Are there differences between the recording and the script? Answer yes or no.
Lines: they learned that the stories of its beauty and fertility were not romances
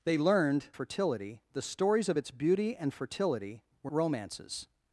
yes